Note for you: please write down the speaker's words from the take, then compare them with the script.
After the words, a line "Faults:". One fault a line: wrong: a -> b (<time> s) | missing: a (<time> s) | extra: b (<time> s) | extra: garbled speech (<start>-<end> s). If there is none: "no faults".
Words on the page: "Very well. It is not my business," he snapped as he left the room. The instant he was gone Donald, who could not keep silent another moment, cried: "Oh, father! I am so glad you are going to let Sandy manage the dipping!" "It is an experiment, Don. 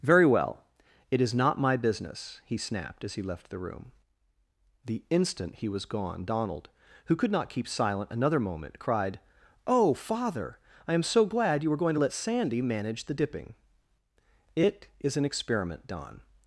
"Very well. It is not my business," he snapped as he left the room. The instant he was gone Donald, who could not keep silent another moment, cried: "Oh, father! I am so glad you were going to let Sandy manage the dipping!" "It is an experiment, Don.
Faults:
wrong: are -> were (11.7 s)